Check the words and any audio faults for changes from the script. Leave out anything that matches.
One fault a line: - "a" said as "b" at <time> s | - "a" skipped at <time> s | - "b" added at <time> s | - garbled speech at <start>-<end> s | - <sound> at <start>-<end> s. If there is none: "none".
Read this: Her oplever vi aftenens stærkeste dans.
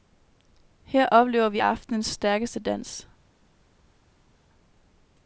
none